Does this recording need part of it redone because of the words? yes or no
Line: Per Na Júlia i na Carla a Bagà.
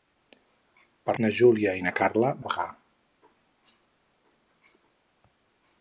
no